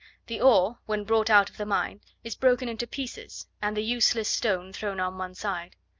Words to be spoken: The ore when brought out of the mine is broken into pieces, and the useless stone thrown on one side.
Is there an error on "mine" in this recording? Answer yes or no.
no